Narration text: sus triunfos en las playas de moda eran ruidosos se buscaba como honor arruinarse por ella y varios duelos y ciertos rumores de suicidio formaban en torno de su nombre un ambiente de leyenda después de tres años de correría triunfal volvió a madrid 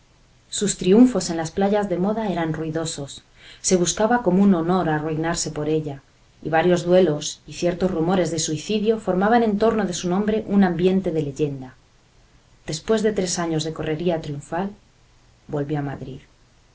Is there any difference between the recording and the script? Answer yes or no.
yes